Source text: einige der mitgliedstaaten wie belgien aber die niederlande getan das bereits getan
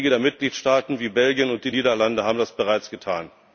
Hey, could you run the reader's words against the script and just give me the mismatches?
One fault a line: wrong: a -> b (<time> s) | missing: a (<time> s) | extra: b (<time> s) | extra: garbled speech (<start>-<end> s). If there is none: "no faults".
wrong: aber -> und (1.5 s)
wrong: getan -> haben (2.2 s)